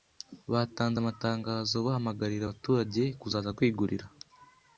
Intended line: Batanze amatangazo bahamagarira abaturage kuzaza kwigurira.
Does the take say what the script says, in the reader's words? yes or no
yes